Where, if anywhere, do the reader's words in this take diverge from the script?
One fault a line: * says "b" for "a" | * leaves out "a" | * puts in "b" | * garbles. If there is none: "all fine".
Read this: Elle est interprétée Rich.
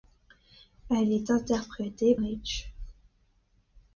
all fine